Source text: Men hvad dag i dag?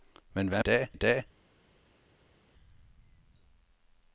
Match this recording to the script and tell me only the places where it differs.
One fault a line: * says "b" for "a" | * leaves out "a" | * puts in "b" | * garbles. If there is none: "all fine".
all fine